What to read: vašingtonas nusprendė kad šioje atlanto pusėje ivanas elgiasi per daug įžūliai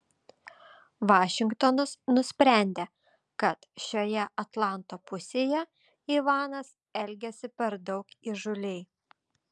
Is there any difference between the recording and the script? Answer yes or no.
no